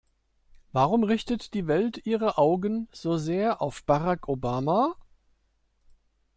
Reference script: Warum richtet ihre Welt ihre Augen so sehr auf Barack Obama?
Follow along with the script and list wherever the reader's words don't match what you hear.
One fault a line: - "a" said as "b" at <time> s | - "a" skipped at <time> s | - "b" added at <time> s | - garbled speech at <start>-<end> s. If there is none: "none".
- "ihre" said as "die" at 1.5 s